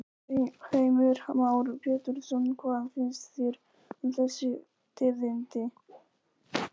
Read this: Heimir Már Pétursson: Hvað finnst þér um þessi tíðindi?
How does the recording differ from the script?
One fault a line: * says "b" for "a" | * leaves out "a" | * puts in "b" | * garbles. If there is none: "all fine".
all fine